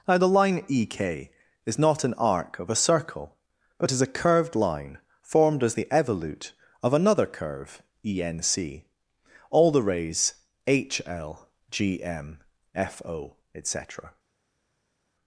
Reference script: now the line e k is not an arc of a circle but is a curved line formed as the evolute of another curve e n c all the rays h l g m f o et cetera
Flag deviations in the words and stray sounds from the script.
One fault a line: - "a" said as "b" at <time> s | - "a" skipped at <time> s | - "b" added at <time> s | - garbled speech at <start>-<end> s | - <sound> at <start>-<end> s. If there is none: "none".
none